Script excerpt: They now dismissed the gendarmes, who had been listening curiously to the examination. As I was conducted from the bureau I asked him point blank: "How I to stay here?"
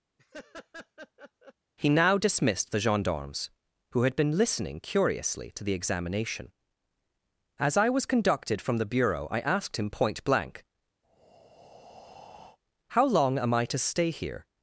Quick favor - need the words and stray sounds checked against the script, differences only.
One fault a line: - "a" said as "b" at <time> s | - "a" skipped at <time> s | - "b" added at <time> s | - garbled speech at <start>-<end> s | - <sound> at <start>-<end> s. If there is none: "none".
- laugh at 0.2-1.5 s
- "They" said as "He" at 1.8 s
- breath at 11.0-12.6 s
- "long am" added at 13.1 s